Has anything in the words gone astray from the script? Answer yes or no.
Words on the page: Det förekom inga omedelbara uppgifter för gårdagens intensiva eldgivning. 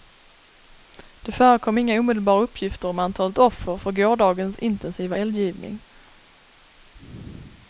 yes